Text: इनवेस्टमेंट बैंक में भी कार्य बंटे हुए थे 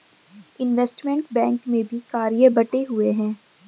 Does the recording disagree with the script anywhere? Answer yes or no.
yes